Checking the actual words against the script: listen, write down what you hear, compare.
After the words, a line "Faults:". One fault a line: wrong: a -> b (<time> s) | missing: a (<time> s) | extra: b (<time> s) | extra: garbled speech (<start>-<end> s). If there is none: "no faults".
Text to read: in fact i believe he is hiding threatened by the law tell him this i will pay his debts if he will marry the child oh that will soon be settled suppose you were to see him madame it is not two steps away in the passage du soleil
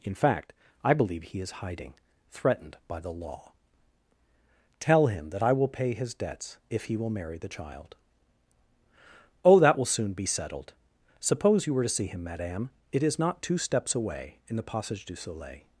in fact i believe he is hiding threatened by the law tell him that i will pay his debts if he will marry the child oh that will soon be settled suppose you were to see him madame it is not two steps away in the passage du soleil
Faults:
wrong: this -> that (5.3 s)